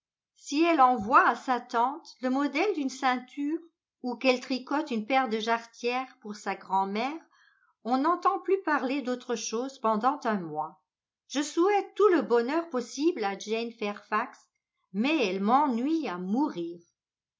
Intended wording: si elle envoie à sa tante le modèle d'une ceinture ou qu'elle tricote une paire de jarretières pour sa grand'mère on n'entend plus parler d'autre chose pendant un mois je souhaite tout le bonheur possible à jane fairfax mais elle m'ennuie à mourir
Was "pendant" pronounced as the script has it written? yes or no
yes